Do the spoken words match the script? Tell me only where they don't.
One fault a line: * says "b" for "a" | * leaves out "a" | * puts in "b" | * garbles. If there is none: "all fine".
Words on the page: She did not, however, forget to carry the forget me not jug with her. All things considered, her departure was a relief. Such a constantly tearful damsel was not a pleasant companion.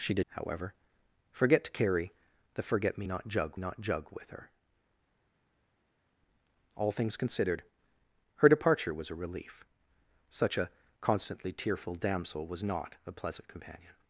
* leaves out "not"
* puts in "not jug"